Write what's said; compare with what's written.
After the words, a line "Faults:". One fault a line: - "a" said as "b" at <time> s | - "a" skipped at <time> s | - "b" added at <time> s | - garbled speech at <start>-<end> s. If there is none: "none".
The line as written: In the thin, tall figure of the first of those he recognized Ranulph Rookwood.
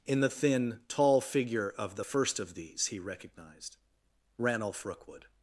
In the thin, tall figure of the first of these he recognized Ranulph Rookwood.
Faults:
- "those" said as "these" at 2.5 s